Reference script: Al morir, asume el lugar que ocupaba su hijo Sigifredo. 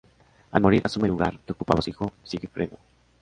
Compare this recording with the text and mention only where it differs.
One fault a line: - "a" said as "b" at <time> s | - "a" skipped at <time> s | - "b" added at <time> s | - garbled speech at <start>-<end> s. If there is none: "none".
none